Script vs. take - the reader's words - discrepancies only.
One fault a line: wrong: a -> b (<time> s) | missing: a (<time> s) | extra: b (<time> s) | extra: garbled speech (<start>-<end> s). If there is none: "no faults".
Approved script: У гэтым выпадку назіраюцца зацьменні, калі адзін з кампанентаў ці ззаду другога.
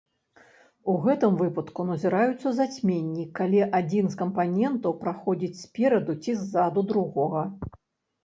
extra: праходзіць спераду (5.0 s)